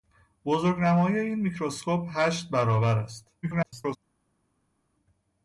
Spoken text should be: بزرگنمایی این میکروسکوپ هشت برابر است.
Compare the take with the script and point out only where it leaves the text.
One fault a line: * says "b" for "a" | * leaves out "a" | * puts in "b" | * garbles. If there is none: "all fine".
* garbles